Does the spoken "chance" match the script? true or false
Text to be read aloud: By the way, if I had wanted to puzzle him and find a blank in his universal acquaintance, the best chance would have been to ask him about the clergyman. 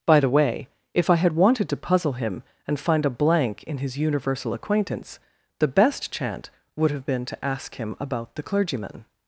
false